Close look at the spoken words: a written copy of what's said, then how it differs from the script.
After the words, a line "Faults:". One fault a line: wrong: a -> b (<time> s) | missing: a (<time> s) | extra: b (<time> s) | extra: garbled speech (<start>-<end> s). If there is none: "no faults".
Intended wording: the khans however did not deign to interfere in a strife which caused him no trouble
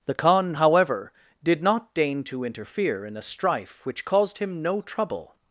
the khan however did not deign to interfere in a strife which caused him no trouble
Faults:
wrong: khans -> khan (0.1 s)